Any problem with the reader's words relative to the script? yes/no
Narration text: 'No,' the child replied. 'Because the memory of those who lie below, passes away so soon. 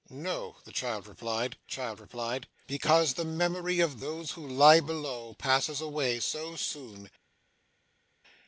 yes